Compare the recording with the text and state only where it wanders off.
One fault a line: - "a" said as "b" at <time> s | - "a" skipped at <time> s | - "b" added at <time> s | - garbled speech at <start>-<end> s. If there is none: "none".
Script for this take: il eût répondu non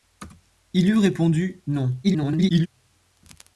- garbled speech at 2.0-2.7 s